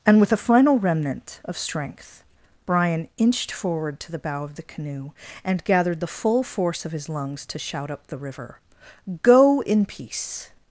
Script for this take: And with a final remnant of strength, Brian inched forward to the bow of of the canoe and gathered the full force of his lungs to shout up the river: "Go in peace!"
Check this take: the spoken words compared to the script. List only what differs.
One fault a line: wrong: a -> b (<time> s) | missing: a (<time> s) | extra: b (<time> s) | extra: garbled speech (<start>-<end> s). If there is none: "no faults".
missing: of (4.5 s)